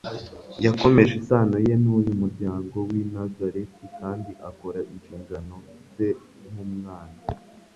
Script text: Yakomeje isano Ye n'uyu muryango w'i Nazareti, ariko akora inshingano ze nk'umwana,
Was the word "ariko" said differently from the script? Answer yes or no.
yes